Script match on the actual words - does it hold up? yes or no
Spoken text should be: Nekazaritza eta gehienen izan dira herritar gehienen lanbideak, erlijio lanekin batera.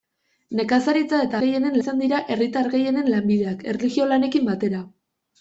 yes